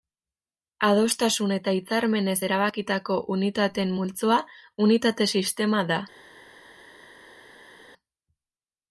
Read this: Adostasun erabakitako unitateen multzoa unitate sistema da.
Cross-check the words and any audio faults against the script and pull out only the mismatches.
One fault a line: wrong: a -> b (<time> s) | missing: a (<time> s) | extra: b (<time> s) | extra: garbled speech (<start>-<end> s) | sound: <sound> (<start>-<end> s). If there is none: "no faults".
extra: eta hitzarmenez (1.6 s)